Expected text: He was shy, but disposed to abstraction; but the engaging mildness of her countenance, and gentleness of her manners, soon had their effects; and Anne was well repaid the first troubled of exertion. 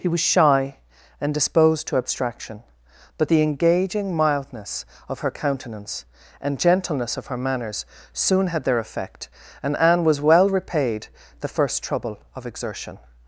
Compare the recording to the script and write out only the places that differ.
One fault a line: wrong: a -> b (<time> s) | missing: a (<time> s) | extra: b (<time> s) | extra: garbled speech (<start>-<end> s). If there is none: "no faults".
wrong: but -> and (1.2 s)
wrong: effects -> effect (8.8 s)
wrong: troubled -> trouble (11.8 s)